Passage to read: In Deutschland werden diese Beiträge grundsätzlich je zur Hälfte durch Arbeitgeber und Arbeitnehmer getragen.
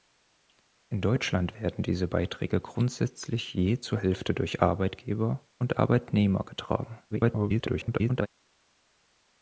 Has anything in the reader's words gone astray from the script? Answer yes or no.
yes